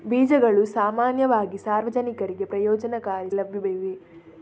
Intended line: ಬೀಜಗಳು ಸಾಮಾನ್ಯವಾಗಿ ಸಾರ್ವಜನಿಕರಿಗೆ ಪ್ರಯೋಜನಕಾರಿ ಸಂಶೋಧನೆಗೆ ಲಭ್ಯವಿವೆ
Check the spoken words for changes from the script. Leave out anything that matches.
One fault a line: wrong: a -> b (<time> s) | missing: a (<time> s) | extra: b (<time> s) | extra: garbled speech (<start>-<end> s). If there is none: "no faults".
missing: ಸಂಶೋಧನೆಗೆ (3.3 s)